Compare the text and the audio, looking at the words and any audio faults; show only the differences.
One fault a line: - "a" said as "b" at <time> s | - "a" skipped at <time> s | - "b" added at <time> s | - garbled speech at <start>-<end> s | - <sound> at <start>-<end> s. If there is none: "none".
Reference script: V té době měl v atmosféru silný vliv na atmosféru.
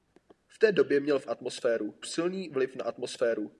none